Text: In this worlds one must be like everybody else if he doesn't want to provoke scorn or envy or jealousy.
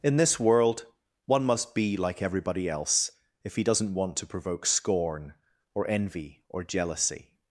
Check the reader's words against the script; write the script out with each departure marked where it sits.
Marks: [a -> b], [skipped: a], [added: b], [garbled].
In this [worlds -> world] one must be like everybody else if he doesn't want to provoke scorn or envy or jealousy.